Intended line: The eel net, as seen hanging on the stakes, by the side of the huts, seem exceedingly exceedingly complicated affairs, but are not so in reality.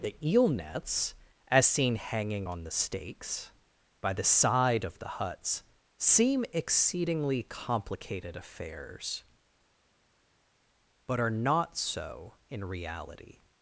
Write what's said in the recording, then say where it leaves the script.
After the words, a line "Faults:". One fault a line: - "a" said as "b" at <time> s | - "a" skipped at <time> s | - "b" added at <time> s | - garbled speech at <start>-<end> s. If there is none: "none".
The eel nets, as seen hanging on the stakes, by the side of the huts, seem exceedingly complicated affairs, but are not so in reality.
Faults:
- "net" said as "nets" at 0.5 s
- "exceedingly" skipped at 7.4 s